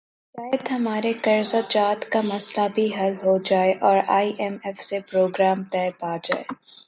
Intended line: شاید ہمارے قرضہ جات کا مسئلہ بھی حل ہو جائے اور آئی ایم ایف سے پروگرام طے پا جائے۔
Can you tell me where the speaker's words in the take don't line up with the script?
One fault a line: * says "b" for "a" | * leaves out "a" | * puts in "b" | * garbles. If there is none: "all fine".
all fine